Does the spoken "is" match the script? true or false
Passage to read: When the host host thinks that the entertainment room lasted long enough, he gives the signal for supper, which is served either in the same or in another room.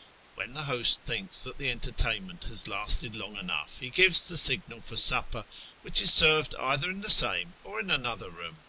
true